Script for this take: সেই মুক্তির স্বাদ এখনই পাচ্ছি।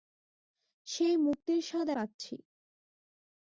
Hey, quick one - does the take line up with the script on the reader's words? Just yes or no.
no